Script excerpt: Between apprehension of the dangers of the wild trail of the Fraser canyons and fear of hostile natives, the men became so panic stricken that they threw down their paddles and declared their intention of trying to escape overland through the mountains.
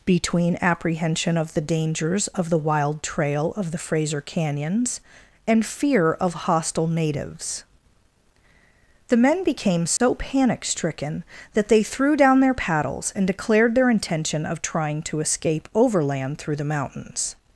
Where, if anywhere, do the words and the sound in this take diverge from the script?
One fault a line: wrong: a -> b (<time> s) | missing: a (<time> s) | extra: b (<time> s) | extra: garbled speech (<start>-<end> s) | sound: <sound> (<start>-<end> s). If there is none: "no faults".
sound: dropout (10.0-10.0 s)